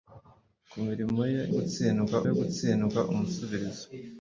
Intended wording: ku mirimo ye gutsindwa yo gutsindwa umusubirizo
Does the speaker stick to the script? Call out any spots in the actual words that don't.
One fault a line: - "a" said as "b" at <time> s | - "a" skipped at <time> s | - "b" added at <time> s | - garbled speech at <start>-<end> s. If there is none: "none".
none